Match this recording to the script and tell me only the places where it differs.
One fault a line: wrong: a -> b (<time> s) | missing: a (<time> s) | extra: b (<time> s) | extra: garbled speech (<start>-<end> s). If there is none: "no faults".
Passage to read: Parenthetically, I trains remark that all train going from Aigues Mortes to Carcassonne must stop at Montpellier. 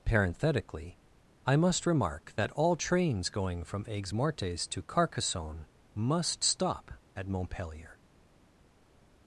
wrong: trains -> must (1.6 s)
wrong: train -> trains (2.8 s)